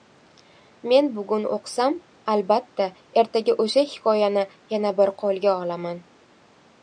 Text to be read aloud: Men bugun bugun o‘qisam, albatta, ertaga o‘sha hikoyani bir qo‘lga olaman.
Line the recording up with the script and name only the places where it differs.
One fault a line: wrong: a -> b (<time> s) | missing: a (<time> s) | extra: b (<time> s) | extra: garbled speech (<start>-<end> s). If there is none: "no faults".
missing: bugun (1.4 s)
extra: yana (4.8 s)